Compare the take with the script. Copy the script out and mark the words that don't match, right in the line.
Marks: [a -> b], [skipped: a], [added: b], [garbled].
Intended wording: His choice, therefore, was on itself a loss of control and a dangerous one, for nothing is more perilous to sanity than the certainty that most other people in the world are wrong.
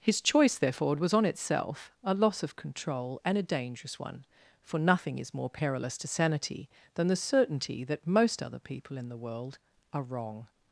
His choice, therefore, was on itself a loss of control and a dangerous one, for nothing is more perilous to sanity than the certainty that most other people in the world are wrong.